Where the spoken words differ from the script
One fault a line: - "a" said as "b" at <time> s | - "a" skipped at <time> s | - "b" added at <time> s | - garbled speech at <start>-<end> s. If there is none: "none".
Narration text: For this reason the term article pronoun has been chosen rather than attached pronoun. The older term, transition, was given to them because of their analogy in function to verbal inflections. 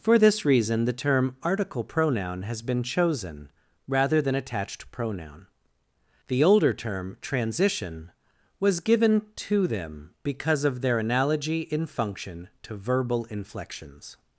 none